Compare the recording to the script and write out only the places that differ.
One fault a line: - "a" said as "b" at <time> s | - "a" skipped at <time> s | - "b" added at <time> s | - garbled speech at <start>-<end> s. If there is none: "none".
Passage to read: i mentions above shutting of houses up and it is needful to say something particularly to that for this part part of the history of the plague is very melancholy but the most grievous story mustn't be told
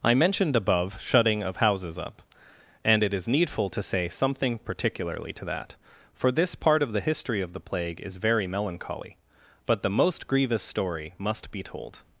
- "mentions" said as "mentioned" at 0.1 s
- "part" skipped at 6.8 s
- "mustn't" said as "must" at 11.2 s